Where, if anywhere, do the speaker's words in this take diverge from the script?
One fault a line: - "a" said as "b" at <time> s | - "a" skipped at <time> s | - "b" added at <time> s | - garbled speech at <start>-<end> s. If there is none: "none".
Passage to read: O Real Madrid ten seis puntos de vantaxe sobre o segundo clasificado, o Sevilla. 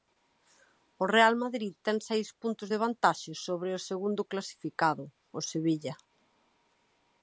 none